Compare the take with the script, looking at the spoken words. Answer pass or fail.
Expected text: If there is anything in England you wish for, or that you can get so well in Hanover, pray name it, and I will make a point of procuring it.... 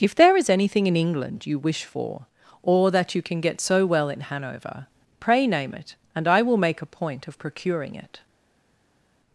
pass